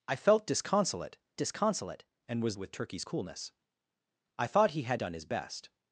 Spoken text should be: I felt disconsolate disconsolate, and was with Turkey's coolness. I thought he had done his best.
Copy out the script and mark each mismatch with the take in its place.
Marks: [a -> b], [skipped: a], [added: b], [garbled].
I felt disconsolate disconsolate, and was with Turkey's coolness. I thought he had done his best.